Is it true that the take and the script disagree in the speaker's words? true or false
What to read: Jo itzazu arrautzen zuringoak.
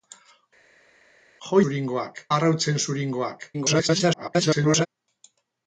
true